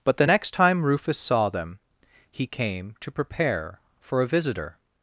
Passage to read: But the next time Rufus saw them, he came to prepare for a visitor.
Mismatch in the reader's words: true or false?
false